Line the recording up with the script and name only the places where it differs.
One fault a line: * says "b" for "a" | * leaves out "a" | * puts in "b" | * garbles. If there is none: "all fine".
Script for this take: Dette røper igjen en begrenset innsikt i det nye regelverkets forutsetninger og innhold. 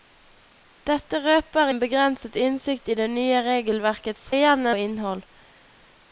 * leaves out "igjen"
* says "igjen" for "forutsetninger"